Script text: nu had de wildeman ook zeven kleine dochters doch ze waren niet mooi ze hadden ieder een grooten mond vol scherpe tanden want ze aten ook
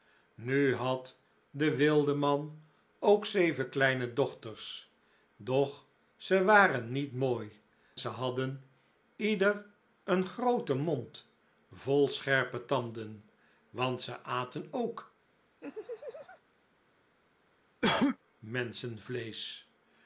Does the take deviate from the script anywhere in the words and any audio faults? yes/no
yes